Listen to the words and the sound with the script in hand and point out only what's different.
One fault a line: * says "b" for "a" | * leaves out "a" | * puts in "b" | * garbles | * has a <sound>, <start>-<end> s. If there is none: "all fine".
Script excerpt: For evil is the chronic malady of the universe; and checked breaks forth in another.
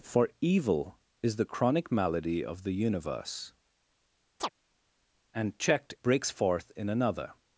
* has a chirp, 4.4-4.5 s